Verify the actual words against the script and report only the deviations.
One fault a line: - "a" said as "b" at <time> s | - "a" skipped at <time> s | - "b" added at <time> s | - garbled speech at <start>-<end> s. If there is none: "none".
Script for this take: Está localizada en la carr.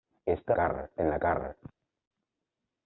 - "localizada" said as "carr" at 0.5 s